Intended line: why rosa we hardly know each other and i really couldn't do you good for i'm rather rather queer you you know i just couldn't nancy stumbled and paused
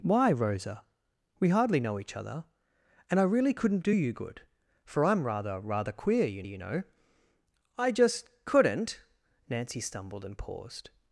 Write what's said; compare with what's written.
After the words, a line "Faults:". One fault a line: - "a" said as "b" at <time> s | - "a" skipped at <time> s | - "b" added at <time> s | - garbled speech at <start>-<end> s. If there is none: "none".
why rosa we hardly know each other and i really couldn't do you good for i'm rather rather queer you you know i just couldn't nancy stumbled and paused
Faults:
none